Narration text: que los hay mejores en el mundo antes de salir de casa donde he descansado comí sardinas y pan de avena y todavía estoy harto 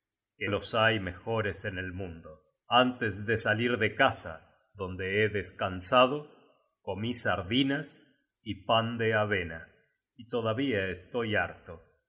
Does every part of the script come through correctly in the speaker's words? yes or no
yes